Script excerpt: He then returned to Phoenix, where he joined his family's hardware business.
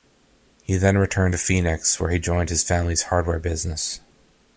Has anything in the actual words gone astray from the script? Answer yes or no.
no